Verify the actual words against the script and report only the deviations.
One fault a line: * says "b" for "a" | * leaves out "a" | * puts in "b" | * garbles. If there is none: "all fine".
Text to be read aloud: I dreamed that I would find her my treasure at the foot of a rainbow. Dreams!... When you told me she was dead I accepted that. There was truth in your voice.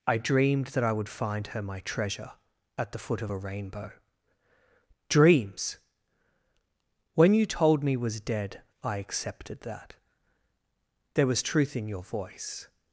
* leaves out "she"